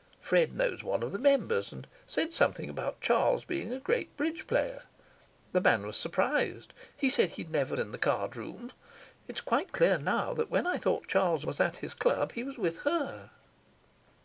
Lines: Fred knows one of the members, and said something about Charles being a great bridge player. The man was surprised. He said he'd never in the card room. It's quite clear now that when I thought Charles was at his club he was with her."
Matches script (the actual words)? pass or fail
pass